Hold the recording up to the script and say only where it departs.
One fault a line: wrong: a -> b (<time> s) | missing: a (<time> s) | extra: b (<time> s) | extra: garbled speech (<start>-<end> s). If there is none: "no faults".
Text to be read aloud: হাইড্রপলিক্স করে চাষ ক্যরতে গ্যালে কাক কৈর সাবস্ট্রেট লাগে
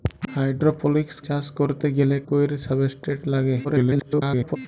missing: করে (1.1 s)
missing: কাক (2.2 s)
extra: garbled speech (3.6-4.6 s)